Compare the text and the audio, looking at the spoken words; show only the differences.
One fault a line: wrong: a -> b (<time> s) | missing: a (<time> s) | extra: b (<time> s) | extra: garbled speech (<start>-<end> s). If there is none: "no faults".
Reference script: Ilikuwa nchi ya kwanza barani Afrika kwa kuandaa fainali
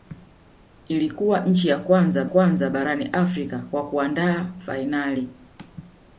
extra: kwanza (2.2 s)